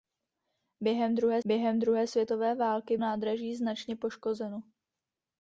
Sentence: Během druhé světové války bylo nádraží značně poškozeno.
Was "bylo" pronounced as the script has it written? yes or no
no